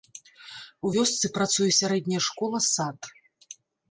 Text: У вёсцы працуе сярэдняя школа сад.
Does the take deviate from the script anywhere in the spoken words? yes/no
no